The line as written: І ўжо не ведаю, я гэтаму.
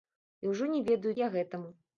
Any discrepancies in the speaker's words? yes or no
no